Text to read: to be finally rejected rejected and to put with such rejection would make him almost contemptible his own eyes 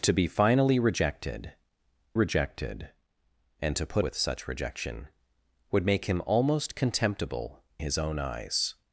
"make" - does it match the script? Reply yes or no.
yes